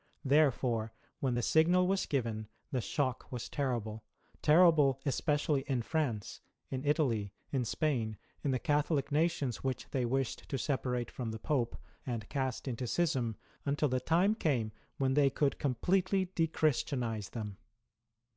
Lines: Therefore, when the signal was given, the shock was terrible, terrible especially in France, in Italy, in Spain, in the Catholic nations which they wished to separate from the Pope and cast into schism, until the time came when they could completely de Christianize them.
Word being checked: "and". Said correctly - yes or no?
yes